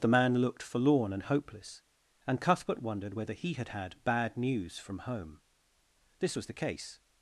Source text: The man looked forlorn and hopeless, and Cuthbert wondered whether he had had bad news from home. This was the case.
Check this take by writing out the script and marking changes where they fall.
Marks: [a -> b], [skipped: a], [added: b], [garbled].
The man looked forlorn and hopeless, and Cuthbert wondered whether he had had bad news from home. This was the case.